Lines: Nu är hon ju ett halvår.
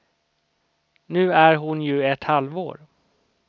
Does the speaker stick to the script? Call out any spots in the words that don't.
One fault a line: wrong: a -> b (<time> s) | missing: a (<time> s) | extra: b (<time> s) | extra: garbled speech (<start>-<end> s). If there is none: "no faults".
no faults